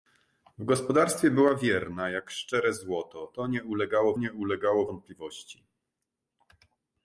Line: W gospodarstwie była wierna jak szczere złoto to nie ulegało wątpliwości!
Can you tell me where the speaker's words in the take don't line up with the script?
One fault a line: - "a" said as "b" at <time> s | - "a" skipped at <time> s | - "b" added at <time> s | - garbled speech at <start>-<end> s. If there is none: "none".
- "nie ulegało" added at 4.2 s